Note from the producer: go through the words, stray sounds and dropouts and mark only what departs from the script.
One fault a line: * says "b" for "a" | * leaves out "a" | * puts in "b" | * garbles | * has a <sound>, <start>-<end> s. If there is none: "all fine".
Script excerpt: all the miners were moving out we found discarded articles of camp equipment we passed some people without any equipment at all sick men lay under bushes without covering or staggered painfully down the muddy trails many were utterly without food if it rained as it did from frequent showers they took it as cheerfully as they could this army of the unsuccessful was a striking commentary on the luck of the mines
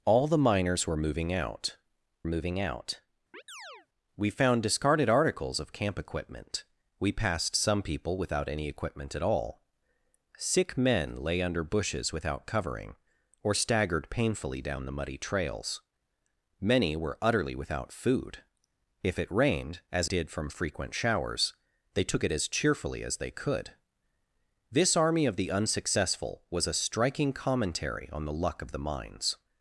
* puts in "moving out"
* has a chirp, 3.3-3.9 s
* leaves out "it"